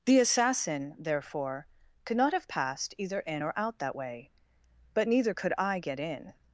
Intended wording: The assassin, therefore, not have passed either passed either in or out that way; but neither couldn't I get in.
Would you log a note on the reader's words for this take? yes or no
yes